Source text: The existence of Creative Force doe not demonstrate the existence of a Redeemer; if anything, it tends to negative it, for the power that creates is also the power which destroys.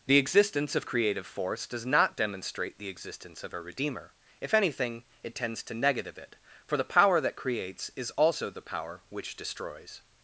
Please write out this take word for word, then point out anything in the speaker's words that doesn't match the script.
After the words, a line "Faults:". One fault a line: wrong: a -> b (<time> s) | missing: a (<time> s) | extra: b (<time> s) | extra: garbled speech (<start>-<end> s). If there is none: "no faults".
The existence of Creative Force does not demonstrate the existence of a Redeemer; if anything, it tends to negative it, for the power that creates is also the power which destroys.
Faults:
wrong: doe -> does (1.7 s)